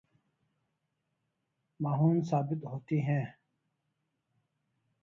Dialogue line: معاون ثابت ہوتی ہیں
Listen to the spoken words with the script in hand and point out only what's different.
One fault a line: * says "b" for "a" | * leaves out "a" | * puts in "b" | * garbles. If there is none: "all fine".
all fine